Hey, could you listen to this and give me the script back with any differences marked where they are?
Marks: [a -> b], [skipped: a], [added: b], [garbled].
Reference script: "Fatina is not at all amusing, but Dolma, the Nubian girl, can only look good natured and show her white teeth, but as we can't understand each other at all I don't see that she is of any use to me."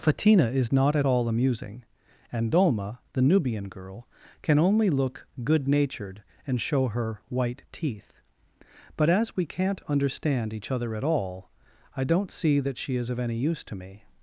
"Fatina is not at all amusing, [but -> and] Dolma, the Nubian girl, can only look good natured and show her white teeth, but as we can't understand each other at all I don't see that she is of any use to me."